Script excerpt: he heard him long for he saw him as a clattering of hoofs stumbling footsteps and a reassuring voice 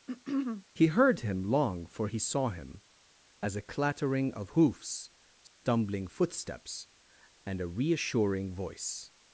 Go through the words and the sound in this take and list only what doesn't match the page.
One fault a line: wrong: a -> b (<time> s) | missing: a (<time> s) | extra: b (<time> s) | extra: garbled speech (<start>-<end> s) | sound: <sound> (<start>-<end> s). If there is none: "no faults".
sound: throat clearing (0.1-0.7 s)
sound: dropout (5.5-5.6 s)